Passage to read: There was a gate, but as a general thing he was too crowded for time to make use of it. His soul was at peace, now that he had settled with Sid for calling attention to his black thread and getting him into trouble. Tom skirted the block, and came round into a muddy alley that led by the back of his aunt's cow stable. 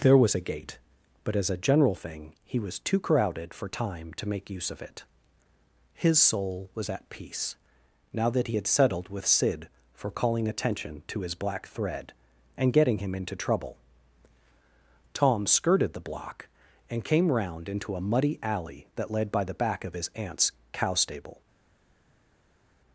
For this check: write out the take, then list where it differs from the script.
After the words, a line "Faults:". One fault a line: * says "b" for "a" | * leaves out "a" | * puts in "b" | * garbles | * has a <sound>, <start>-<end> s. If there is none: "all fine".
There was a gate, but as a general thing he was too crowded for time to make use of it. His soul was at peace, now that he had settled with Sid for calling attention to his black thread and getting him into trouble. Tom skirted the block, and came round into a muddy alley that led by the back of his aunt's cow stable.
Faults:
all fine